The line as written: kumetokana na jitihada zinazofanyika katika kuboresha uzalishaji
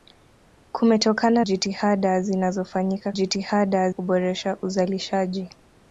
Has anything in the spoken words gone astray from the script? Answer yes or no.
yes